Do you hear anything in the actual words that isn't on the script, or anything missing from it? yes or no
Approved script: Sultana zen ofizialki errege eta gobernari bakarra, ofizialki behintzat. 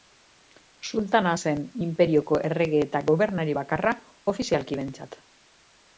yes